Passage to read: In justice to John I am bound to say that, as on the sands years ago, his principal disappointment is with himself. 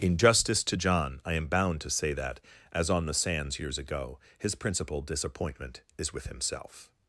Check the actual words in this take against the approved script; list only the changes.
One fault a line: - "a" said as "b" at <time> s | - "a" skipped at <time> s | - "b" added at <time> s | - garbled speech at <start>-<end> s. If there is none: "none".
none